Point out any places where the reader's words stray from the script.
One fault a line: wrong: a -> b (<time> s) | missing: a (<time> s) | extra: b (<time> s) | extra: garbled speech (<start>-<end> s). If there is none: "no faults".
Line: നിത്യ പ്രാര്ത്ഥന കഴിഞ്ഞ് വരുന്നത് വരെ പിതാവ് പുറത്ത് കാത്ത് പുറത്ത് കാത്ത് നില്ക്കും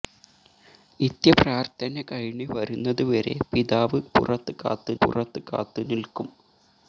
no faults